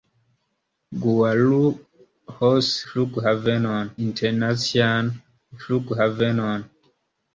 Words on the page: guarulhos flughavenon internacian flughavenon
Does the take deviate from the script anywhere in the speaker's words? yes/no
no